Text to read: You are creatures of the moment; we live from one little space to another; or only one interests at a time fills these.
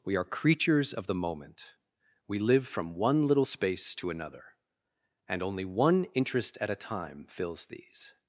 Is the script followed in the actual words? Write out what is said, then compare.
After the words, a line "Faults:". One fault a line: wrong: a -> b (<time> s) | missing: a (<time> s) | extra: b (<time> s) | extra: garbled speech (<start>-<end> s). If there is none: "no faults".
We are creatures of the moment; we live from one little space to another; and only one interest at a time fills these.
Faults:
wrong: You -> We (0.0 s)
wrong: or -> and (5.3 s)
wrong: interests -> interest (6.1 s)